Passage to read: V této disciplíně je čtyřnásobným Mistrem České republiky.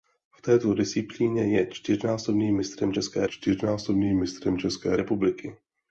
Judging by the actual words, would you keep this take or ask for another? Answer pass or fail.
fail